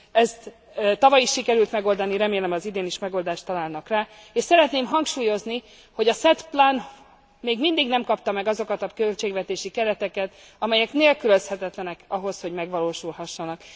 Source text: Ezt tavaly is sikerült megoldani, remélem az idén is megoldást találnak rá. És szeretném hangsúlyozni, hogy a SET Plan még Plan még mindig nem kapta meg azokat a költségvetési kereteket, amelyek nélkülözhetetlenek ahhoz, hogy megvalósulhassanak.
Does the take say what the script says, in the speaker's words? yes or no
no